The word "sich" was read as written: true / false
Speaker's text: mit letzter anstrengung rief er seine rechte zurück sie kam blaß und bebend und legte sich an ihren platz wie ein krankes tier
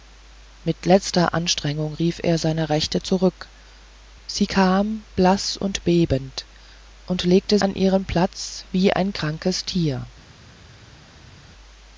false